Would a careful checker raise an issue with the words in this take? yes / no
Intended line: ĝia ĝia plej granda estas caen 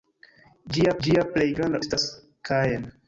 no